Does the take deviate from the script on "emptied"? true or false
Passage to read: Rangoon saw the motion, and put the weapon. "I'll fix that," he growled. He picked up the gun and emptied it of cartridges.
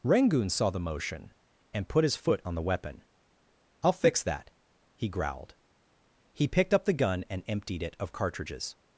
false